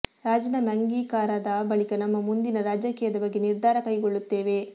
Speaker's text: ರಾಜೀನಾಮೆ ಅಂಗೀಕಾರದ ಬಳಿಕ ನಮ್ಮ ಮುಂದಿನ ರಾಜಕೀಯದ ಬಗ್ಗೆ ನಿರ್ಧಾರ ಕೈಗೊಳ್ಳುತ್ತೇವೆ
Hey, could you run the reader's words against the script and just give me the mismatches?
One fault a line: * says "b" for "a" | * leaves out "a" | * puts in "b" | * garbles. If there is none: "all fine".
all fine